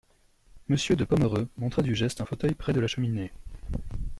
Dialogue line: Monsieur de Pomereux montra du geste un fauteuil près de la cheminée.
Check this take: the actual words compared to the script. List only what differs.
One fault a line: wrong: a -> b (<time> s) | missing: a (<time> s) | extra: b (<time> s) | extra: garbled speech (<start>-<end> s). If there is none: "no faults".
no faults